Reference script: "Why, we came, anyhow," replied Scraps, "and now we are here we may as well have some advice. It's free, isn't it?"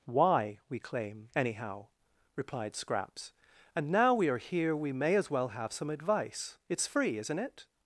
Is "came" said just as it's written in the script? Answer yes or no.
no